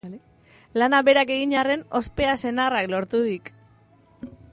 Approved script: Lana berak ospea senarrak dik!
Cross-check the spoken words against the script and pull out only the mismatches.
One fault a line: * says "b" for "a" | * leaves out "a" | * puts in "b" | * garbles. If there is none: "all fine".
* puts in "egin arren"
* puts in "lortu"